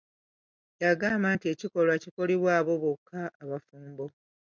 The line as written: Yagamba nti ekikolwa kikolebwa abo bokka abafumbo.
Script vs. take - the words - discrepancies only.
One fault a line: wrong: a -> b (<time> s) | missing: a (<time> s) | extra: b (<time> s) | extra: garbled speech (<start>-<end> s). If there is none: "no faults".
no faults